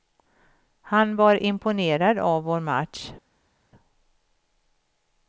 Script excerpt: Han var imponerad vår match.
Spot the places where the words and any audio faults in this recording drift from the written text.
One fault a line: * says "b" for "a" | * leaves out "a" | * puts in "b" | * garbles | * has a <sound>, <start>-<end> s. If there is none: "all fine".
* puts in "av"